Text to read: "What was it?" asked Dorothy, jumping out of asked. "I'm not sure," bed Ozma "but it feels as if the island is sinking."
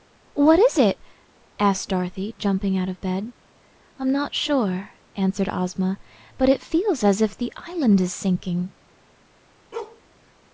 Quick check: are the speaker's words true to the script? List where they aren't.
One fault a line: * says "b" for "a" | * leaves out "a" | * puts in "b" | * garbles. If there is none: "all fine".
* says "is" for "was"
* says "bed" for "asked"
* says "answered" for "bed"